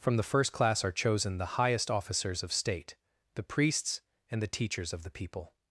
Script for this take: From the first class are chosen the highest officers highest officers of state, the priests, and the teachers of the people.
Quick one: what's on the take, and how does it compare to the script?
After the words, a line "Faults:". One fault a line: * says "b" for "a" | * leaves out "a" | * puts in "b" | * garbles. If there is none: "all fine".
From the first class are chosen the highest officers of state, the priests, and the teachers of the people.
Faults:
* leaves out "highest officers"